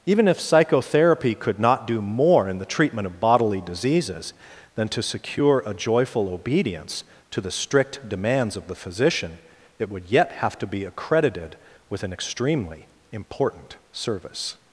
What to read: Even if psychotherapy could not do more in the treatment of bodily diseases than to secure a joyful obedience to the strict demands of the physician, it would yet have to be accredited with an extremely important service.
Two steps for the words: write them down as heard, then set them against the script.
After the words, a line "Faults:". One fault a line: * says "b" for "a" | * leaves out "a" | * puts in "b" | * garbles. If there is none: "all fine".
Even if psychotherapy could not do more in the treatment of bodily diseases than to secure a joyful obedience to the strict demands of the physician, it would yet have to be accredited with an extremely important service.
Faults:
all fine